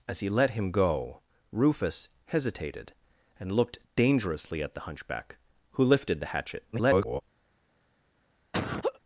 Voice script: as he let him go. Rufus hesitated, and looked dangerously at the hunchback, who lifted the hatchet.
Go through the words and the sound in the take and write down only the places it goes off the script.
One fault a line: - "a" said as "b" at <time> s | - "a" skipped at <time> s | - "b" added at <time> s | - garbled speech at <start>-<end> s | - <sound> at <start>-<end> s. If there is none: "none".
- garbled speech at 6.7-7.2 s
- laugh at 8.5-9.0 s